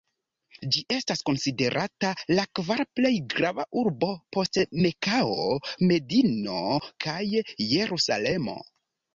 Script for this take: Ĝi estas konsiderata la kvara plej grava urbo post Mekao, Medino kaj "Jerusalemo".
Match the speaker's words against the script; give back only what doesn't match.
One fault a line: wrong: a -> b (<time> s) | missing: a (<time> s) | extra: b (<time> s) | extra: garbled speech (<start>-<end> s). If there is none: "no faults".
no faults